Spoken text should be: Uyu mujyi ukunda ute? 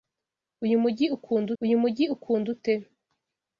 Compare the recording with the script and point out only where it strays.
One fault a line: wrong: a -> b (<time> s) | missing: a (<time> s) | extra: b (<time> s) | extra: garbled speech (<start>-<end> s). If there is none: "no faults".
extra: uyu mujyi ukunda (1.6 s)